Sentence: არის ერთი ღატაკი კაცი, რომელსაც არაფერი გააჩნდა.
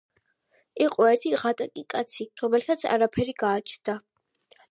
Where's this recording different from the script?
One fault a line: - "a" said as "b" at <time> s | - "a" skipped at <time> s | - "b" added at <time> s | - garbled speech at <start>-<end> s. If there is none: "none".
- "არის" said as "იყო" at 0.8 s